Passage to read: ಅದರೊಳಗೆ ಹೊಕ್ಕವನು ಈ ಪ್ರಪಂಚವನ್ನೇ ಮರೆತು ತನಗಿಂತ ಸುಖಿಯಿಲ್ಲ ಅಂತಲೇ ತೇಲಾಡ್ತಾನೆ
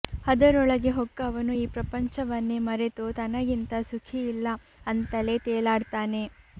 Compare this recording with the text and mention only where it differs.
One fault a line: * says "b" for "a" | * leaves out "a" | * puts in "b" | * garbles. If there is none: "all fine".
all fine